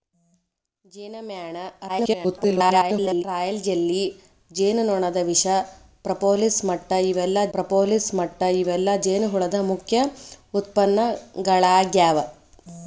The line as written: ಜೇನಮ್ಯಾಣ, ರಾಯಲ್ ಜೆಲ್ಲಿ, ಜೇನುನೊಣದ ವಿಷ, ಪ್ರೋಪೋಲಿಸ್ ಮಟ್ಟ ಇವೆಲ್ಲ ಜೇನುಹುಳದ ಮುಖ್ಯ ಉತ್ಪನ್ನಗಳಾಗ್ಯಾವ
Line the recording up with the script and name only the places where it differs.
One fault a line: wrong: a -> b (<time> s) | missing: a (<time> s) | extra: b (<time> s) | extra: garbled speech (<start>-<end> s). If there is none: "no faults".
extra: garbled speech (1.9-3.2 s)
extra: ಪ್ರೋಪೋಲಿಸ್ ಮಟ್ಟ ಇವೆಲ್ಲ (7.5 s)